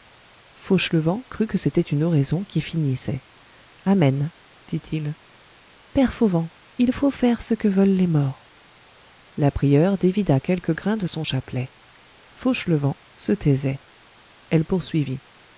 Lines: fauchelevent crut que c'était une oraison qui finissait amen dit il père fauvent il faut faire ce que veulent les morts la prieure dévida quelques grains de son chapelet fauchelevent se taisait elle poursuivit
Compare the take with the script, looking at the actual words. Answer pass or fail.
pass